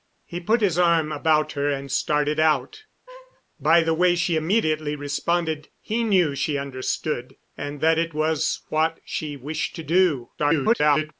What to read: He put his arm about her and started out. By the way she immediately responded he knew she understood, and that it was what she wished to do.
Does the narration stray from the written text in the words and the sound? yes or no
yes